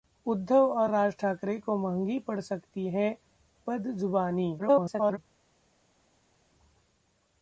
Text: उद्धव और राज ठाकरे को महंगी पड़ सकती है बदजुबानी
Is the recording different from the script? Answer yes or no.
yes